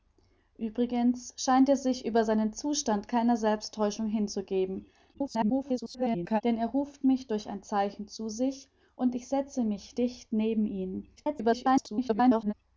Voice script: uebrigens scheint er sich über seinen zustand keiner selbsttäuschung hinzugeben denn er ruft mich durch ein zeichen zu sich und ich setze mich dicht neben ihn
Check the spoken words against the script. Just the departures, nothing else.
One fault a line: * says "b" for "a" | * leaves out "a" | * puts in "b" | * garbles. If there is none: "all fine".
* garbles
* garbles